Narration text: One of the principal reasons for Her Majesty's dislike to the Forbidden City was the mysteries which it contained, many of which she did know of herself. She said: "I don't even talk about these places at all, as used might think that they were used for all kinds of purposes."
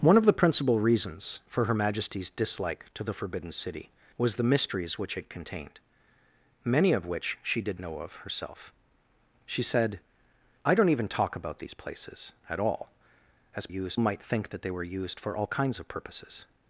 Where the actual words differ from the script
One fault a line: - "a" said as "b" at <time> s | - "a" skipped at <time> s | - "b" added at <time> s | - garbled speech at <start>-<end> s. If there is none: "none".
none